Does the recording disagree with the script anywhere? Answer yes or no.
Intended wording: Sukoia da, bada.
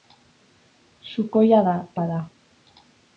no